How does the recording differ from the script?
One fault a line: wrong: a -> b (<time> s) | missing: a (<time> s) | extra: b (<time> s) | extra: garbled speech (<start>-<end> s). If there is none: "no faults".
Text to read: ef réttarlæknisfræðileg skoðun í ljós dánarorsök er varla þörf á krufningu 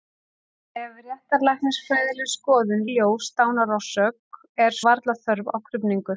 no faults